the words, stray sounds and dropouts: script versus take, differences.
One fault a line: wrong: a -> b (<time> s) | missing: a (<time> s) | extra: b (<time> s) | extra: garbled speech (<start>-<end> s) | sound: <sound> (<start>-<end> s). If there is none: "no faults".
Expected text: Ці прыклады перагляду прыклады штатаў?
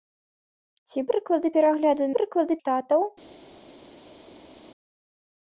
no faults